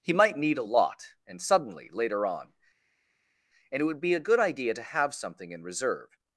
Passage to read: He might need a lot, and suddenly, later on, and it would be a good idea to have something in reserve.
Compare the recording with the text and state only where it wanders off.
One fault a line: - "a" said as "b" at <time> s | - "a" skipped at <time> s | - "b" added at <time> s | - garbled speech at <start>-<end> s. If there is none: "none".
none